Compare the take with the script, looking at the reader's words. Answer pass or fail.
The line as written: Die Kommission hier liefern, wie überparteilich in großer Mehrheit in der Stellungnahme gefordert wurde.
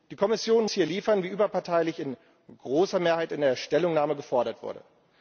pass